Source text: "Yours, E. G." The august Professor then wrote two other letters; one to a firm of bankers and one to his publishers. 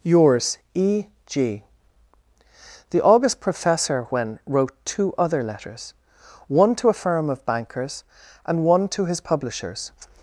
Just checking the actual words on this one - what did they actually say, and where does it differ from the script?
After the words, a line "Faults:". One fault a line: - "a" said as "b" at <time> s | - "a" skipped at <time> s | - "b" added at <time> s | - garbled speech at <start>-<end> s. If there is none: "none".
"Yours, E. G." The august Professor when wrote two other letters; one to a firm of bankers and one to his publishers.
Faults:
- "then" said as "when" at 4.1 s